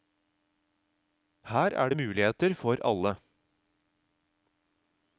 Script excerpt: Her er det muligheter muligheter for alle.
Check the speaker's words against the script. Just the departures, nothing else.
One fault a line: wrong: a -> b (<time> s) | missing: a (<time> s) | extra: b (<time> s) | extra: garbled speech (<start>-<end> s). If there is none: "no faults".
missing: muligheter (2.5 s)